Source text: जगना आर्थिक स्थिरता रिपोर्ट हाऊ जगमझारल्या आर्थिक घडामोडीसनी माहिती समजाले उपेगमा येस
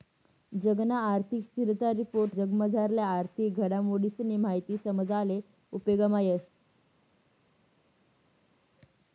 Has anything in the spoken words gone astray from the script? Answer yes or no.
yes